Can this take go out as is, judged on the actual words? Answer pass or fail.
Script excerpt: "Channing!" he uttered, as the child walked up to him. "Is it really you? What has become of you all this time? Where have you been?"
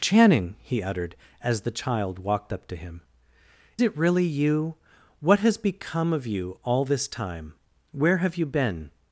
fail